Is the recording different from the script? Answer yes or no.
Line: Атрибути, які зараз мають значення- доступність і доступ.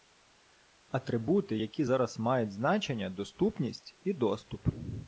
no